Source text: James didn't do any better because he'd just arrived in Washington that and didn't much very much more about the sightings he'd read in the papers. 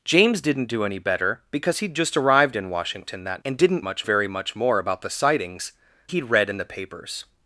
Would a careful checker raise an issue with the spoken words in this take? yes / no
no